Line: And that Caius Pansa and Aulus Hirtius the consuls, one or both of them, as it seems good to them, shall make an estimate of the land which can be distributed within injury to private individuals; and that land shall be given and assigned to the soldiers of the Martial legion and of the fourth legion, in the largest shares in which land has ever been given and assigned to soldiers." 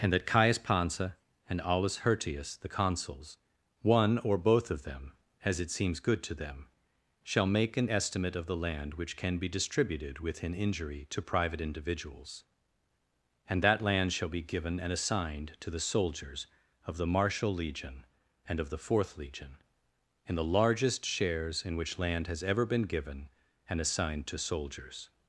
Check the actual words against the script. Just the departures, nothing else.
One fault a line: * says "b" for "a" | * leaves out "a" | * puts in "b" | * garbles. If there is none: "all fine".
all fine